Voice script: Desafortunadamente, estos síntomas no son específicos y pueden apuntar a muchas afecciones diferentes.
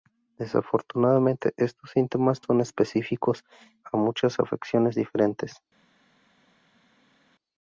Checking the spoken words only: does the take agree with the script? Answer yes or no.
no